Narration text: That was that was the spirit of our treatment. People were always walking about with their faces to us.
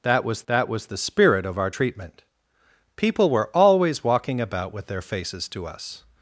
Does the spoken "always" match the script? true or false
true